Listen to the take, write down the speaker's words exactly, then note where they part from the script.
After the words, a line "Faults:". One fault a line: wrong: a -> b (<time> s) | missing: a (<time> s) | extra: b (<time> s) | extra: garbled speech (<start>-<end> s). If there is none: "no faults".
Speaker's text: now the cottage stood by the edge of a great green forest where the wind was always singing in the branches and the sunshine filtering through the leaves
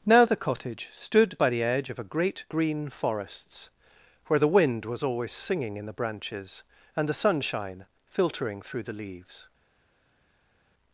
now the cottage stood by the edge of a great green forests where the wind was always singing in the branches and the sunshine filtering through the leaves
Faults:
wrong: forest -> forests (2.9 s)